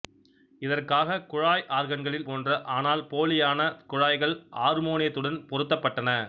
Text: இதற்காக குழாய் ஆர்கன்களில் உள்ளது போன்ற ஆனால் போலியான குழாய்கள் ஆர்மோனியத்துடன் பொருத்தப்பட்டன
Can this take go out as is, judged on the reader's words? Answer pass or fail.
fail